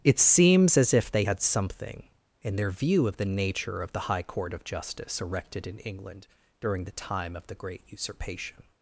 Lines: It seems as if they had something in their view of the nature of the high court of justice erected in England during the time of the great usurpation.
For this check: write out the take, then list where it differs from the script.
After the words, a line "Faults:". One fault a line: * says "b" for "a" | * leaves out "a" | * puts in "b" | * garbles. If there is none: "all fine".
It seems as if they had something in their view of the nature of the high court of justice erected in England during the time of the great usurpation.
Faults:
all fine